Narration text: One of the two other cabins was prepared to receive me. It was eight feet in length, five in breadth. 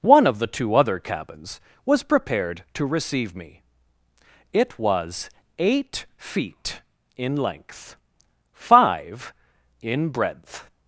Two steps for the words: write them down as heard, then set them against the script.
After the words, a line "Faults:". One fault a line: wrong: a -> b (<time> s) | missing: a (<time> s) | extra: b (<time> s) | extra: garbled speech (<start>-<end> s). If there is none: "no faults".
One of the two other cabins was prepared to receive me. It was eight feet in length, five in breadth.
Faults:
no faults